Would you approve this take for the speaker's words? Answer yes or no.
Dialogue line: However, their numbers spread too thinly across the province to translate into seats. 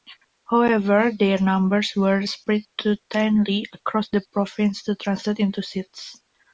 no